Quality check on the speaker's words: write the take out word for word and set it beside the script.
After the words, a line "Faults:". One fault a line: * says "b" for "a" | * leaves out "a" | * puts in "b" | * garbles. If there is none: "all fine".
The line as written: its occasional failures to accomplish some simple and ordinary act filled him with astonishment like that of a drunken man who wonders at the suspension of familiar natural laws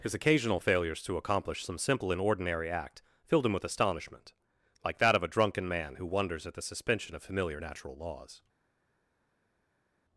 his occasional failures to accomplish some simple and ordinary act filled him with astonishment like that of a drunken man who wonders at the suspension of familiar natural laws
Faults:
* says "his" for "its"